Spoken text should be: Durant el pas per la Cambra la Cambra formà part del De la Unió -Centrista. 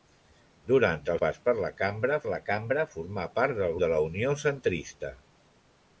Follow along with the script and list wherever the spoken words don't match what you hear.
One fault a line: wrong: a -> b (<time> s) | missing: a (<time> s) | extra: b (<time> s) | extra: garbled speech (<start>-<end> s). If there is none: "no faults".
no faults